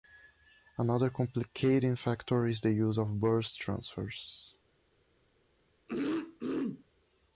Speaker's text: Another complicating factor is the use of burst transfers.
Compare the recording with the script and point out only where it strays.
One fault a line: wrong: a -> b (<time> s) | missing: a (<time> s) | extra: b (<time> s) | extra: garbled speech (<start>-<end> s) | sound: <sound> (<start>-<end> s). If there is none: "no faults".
sound: throat clearing (5.9-6.8 s)